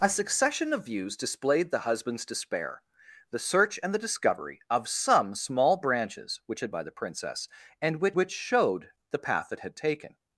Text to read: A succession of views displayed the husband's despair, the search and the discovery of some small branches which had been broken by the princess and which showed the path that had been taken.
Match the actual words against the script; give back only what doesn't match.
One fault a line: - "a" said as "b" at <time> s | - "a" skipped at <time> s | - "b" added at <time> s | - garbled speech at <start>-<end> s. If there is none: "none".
- "been broken" skipped at 6.7 s
- "which" added at 8.1 s
- "been" skipped at 9.8 s